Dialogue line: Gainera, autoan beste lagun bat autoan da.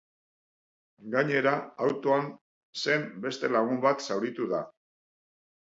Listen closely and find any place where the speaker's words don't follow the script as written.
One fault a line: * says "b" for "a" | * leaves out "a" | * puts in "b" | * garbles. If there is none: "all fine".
* puts in "zen"
* says "zauritu" for "autoan"